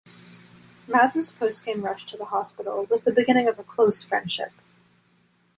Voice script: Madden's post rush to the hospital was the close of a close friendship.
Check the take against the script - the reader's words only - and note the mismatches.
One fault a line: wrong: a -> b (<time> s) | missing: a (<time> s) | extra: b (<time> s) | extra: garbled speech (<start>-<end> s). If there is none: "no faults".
extra: game (1.6 s)
wrong: close -> beginning (3.1 s)